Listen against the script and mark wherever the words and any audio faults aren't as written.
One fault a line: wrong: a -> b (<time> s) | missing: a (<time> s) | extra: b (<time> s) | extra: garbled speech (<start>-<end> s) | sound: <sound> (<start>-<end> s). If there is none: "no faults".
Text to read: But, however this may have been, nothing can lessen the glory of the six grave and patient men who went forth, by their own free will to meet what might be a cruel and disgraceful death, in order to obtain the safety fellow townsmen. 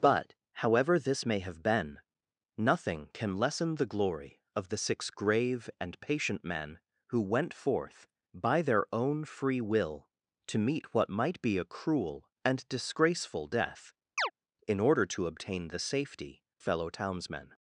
sound: chirp (14.2-14.3 s)